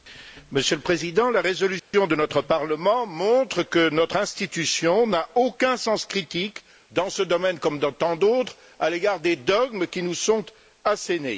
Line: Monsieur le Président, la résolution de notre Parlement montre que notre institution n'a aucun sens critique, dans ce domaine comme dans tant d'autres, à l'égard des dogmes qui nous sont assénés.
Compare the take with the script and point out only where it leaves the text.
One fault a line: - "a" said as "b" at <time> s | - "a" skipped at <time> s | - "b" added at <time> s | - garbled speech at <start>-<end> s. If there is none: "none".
none